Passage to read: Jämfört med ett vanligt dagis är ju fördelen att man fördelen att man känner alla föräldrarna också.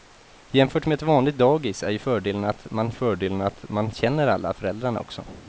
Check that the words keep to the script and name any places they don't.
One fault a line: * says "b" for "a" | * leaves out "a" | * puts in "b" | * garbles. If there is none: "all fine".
all fine